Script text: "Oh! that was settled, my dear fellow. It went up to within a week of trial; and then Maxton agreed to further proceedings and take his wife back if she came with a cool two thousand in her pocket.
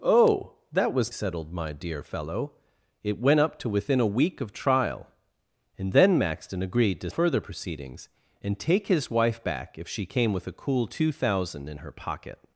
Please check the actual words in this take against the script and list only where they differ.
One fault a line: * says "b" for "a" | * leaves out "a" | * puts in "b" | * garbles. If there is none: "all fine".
all fine